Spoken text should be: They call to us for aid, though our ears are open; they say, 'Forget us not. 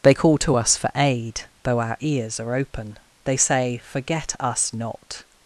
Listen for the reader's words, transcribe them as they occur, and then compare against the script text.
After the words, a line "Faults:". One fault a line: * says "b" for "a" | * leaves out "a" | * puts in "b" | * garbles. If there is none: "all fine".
They call to us for aid, though our ears are open; they say, 'Forget us not.
Faults:
all fine